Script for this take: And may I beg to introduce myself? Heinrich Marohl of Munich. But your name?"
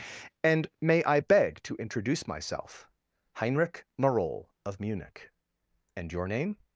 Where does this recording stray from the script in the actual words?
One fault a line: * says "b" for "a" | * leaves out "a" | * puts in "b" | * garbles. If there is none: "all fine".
* says "And" for "But"